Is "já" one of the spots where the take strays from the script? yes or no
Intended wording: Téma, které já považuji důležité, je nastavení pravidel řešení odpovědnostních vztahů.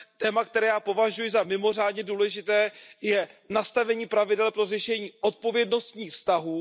no